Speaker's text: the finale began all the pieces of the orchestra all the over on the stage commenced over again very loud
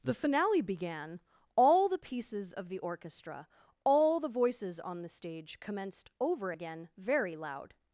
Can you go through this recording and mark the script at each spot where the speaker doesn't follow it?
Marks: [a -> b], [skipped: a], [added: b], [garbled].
the finale began all the pieces of the orchestra all the [over -> voices] on the stage commenced over again very loud